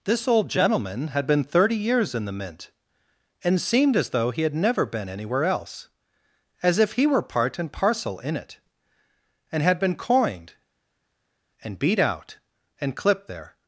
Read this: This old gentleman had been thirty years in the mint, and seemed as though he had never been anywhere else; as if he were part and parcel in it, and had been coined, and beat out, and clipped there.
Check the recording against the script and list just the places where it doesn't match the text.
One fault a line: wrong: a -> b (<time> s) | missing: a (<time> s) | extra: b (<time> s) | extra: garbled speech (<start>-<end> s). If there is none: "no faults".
no faults